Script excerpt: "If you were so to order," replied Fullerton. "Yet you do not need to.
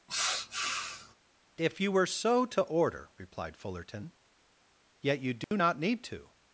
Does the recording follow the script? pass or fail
pass